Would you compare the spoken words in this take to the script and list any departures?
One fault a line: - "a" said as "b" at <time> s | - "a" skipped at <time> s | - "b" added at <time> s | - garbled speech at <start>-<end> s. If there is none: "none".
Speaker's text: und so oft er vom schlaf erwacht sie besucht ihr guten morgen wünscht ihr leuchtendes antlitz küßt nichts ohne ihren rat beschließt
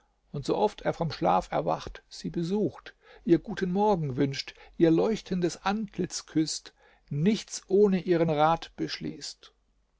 none